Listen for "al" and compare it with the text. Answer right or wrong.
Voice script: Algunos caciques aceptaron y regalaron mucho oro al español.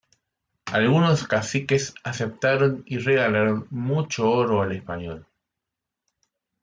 right